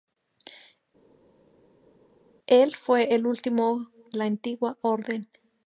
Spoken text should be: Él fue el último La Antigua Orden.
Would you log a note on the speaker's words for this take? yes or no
no